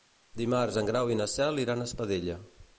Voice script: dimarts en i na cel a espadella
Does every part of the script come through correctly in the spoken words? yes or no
no